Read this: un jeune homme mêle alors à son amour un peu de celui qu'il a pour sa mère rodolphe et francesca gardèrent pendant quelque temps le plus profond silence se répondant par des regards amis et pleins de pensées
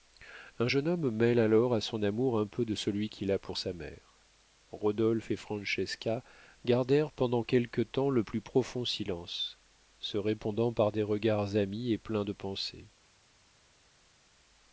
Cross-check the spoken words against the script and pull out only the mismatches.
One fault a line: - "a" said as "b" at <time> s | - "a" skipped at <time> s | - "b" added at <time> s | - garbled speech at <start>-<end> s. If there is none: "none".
none